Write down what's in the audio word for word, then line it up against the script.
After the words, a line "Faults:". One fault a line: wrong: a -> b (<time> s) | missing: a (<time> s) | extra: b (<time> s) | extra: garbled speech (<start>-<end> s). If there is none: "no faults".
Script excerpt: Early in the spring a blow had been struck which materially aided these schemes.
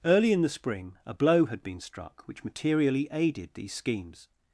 Early in the spring a blow had been struck which materially aided these schemes.
Faults:
no faults